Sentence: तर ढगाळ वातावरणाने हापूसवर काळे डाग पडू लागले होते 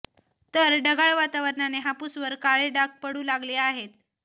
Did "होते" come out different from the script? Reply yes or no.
yes